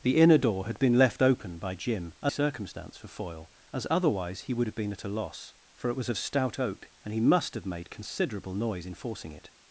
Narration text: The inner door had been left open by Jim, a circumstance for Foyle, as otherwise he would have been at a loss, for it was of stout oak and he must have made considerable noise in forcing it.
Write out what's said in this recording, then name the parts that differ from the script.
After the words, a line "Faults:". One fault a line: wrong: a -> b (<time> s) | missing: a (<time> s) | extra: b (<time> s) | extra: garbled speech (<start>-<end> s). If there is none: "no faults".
The inner door had been left open by Jim, a circumstance for Foyle, as otherwise he would have been at a loss, for it was of stout oak and he must have made considerable noise in forcing it.
Faults:
no faults